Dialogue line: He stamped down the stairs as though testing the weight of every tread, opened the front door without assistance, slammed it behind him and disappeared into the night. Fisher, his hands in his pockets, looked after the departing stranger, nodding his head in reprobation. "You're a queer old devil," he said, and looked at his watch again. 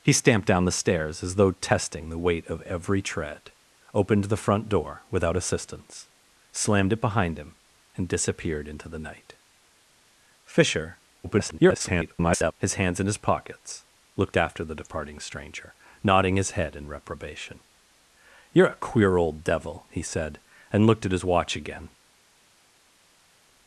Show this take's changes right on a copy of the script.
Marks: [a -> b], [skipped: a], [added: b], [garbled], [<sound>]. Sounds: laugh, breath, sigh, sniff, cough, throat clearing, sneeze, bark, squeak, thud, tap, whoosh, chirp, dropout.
He stamped down the stairs as though testing the weight of every tread, opened the front door without assistance, slammed it behind him and disappeared into the night. Fisher, [garbled] his hands in his pockets, looked after the departing stranger, nodding his head in reprobation. "You're a queer old devil," he said, and looked at his watch again.